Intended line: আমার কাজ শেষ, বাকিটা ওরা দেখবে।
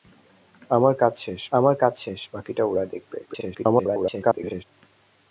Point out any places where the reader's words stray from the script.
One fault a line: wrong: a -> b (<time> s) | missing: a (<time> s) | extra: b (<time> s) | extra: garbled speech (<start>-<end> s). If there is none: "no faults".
extra: আমার কাজ শেষ (1.5 s)
extra: garbled speech (3.3-4.6 s)